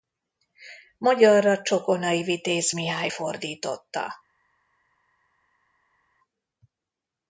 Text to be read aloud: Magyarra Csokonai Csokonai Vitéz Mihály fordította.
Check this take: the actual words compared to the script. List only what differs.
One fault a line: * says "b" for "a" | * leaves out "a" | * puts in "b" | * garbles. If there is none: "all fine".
* leaves out "Csokonai"